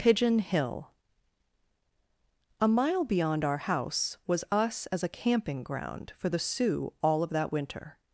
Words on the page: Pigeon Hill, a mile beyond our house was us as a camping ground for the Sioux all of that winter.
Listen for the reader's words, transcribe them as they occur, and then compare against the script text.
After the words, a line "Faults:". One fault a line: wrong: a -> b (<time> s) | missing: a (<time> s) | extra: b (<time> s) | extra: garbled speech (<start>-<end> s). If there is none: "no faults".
Pigeon Hill, a mile beyond our house was us as a camping ground for the Sioux all of that winter.
Faults:
no faults